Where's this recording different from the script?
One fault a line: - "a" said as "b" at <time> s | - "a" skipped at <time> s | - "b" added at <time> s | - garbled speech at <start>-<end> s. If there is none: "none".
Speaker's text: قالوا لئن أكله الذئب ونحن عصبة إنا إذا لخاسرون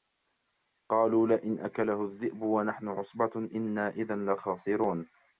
none